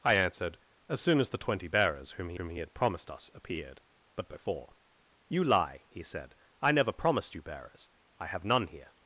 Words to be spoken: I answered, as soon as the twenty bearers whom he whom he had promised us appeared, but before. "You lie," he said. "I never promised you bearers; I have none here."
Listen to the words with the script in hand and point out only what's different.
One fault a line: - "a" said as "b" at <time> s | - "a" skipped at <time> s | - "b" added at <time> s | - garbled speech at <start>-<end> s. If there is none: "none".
none